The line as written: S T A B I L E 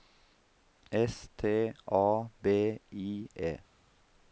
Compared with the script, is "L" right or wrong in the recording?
wrong